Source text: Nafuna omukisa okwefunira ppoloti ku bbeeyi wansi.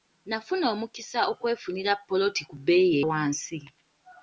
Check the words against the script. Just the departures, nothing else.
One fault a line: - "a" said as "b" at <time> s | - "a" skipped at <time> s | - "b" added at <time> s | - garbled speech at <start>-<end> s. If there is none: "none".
none